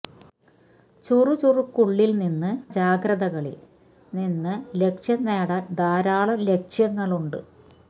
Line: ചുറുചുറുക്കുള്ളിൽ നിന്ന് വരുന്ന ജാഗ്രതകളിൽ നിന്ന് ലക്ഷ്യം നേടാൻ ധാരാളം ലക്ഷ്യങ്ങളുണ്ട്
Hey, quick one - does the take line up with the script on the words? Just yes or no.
no